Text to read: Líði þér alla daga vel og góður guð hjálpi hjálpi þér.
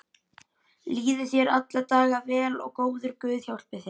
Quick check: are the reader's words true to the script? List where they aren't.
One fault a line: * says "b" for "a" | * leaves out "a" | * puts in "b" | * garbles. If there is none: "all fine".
* leaves out "hjálpi"